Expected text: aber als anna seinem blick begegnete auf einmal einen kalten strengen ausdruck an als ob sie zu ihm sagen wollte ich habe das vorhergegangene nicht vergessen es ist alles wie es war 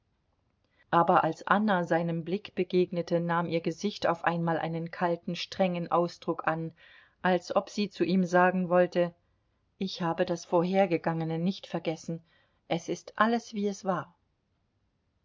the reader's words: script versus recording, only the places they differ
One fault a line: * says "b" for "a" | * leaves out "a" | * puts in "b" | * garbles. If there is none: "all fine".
* puts in "nahm ihr gesicht"